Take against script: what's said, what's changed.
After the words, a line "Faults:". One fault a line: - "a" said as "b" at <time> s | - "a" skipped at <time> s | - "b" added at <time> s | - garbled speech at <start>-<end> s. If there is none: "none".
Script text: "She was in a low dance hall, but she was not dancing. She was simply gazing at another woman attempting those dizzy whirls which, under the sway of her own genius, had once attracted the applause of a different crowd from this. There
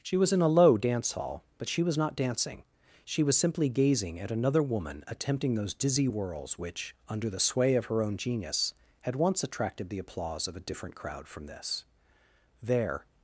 "She was in a low dance hall, but she was not dancing. She was simply gazing at another woman attempting those dizzy whirls which, under the sway of her own genius, had once attracted the applause of a different crowd from this. There
Faults:
none